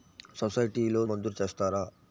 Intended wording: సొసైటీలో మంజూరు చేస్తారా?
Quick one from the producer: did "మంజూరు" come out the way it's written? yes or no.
yes